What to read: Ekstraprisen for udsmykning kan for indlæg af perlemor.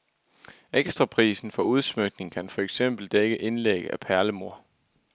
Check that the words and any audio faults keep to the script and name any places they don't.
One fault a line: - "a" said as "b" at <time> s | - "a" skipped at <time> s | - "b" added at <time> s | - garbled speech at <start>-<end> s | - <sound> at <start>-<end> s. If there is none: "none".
- "eksempel dække" added at 2.6 s